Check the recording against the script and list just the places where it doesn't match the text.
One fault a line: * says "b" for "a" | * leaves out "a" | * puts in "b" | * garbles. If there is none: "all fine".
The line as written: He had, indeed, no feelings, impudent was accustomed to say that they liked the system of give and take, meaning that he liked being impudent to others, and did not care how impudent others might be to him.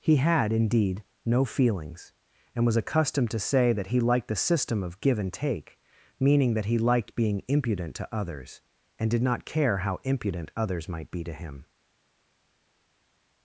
* says "and" for "impudent"
* says "he" for "they"